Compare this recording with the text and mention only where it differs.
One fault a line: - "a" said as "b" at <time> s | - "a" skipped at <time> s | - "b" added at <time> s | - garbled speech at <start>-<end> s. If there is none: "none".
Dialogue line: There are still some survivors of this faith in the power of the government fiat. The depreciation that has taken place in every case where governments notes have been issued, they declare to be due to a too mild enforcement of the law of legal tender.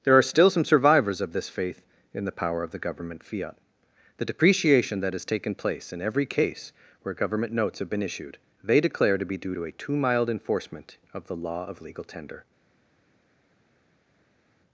- "governments" said as "government" at 7.1 s